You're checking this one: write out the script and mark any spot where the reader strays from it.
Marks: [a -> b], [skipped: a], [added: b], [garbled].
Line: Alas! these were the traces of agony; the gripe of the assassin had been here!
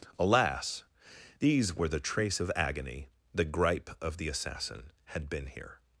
Alas! these were the [traces -> trace] of agony; the gripe of the assassin had been here!